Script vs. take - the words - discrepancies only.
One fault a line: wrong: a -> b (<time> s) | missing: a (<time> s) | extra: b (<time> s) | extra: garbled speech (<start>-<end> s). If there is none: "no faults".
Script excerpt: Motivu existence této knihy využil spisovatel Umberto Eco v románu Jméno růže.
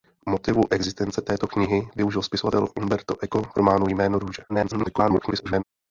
extra: garbled speech (4.5-5.6 s)